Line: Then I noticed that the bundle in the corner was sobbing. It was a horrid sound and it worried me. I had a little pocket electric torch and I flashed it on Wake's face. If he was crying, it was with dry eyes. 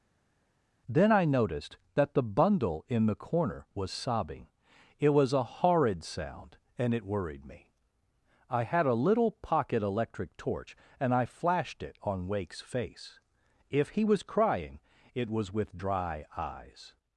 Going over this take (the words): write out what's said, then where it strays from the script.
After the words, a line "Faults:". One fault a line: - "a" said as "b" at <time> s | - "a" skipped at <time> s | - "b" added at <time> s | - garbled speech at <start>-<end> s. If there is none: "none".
Then I noticed that the bundle in the corner was sobbing. It was a horrid sound and it worried me. I had a little pocket electric torch and I flashed it on Wake's face. If he was crying, it was with dry eyes.
Faults:
none